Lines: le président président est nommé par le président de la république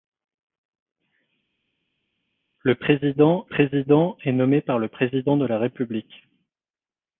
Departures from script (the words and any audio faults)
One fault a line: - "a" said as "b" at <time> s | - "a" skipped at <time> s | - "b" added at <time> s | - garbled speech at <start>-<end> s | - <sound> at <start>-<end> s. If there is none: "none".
none